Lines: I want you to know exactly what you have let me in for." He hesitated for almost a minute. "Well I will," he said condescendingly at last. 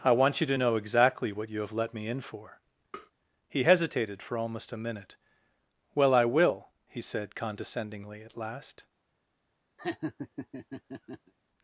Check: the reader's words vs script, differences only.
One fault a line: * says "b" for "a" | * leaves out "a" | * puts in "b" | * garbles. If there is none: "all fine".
all fine